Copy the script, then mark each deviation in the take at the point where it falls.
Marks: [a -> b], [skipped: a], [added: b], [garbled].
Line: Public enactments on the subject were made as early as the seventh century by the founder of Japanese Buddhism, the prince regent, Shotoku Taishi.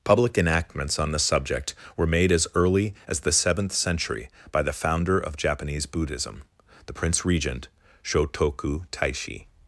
Public enactments on the subject were made as early as the seventh century by the founder of Japanese Buddhism, the prince regent, Shotoku Taishi.